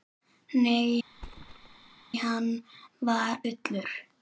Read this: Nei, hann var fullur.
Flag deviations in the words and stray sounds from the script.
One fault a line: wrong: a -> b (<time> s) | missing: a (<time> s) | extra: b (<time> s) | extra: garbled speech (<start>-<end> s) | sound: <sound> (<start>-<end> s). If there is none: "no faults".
sound: thud (1.1-2.1 s)